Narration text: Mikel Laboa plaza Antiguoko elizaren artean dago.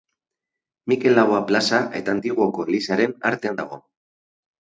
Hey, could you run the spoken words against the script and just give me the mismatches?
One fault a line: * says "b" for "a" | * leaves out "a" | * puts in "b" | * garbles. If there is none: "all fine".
* puts in "eta"